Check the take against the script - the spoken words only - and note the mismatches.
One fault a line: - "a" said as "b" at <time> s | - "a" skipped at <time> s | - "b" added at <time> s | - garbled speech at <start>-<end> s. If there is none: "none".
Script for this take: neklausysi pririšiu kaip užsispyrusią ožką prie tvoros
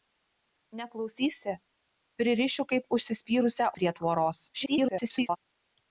- "ožką" skipped at 3.7 s
- garbled speech at 4.5-5.4 s